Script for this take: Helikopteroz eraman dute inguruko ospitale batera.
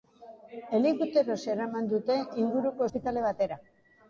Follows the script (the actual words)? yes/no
yes